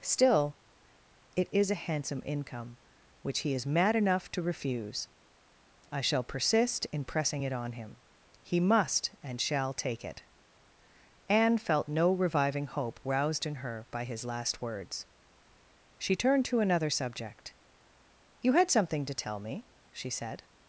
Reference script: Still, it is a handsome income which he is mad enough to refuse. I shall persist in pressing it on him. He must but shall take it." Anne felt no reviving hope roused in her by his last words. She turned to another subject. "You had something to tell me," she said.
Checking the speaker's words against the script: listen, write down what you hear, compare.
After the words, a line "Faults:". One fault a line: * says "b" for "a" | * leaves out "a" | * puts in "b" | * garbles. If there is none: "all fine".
Still, it is a handsome income which he is mad enough to refuse. I shall persist in pressing it on him. He must and shall take it." Anne felt no reviving hope roused in her by his last words. She turned to another subject. "You had something to tell me," she said.
Faults:
* says "and" for "but"